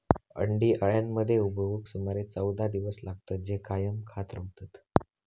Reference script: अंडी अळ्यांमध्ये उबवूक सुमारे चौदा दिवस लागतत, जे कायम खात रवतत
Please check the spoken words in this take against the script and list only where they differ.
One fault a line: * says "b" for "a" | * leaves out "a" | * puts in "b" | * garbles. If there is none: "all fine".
all fine